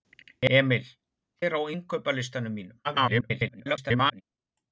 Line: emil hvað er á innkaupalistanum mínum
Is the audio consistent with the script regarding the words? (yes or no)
no